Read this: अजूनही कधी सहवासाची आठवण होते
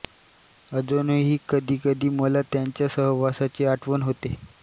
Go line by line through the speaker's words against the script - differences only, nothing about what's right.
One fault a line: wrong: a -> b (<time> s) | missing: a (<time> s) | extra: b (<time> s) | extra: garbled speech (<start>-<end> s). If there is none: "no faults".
extra: कधी मला त्यांच्या (1.8 s)